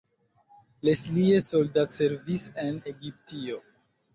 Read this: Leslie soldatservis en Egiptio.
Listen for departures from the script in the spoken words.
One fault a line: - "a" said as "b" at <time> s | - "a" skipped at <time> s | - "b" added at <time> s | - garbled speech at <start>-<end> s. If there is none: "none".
none